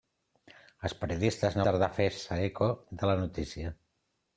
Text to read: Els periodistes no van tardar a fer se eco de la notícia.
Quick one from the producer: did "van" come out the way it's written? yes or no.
no